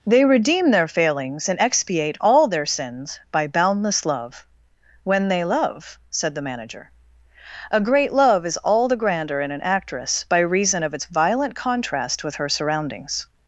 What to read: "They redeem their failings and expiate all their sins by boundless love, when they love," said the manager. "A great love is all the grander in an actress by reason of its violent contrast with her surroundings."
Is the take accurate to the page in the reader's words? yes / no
yes